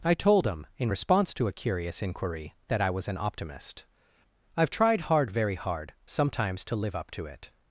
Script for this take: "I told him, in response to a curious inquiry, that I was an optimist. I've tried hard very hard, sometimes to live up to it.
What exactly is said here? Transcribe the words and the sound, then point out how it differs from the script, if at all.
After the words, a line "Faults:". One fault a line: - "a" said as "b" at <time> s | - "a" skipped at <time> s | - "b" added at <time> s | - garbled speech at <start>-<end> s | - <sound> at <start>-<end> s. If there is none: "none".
"I told him, in response to a curious inquiry, that I was an optimist. I've tried hard very hard, sometimes to live up to it.
Faults:
none